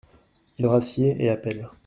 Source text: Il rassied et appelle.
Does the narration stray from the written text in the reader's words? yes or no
no